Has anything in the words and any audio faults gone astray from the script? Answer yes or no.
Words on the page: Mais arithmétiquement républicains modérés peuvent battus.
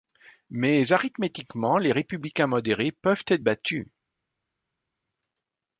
yes